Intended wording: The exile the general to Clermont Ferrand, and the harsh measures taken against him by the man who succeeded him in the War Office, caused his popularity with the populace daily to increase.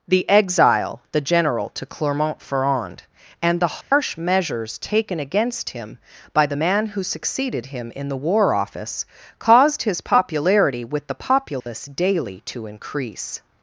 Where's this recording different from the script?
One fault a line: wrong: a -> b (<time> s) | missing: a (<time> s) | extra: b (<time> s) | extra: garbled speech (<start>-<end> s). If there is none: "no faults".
no faults